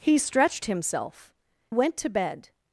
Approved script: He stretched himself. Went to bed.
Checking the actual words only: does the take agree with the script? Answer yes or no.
yes